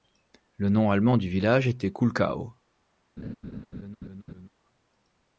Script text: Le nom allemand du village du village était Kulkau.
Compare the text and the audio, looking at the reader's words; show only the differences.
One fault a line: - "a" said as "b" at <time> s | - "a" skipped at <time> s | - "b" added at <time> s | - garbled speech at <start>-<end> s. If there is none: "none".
- "du village" skipped at 1.7 s